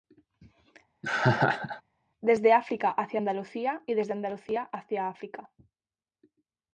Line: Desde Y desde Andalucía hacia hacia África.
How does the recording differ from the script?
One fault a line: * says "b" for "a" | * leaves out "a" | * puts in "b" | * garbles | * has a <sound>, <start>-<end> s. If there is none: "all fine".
* has a laugh, 1.0-1.8 s
* puts in "África hacia Andalucía"
* leaves out "hacia"